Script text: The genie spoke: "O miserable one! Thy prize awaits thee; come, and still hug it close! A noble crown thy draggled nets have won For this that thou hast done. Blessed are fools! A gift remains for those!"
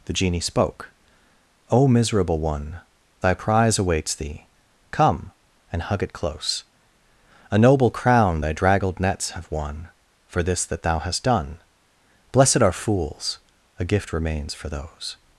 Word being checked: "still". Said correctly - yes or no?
no